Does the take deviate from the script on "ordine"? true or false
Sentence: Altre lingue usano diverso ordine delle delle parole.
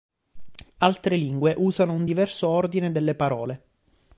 false